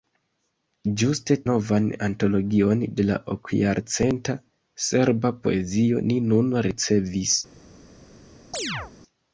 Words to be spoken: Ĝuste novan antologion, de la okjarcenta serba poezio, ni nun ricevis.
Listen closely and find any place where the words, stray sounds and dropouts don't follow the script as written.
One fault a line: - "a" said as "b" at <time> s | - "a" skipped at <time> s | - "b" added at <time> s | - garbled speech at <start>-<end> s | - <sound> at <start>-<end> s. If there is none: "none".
- chirp at 8.5-8.9 s